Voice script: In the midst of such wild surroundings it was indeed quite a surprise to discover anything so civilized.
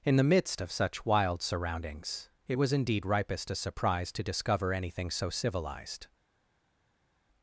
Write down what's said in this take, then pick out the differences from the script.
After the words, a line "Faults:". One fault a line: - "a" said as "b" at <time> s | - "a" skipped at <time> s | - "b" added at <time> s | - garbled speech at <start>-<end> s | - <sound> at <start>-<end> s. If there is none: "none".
In the midst of such wild surroundings it was indeed ripest a surprise to discover anything so civilized.
Faults:
- "quite" said as "ripest" at 3.1 s